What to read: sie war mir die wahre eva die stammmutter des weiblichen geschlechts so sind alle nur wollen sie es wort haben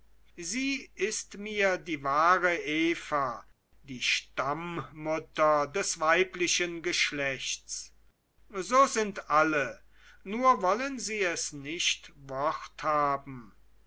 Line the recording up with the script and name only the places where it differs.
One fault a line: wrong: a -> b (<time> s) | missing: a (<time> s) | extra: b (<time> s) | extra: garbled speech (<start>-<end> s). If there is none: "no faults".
wrong: war -> ist (0.9 s)
extra: nicht (11.5 s)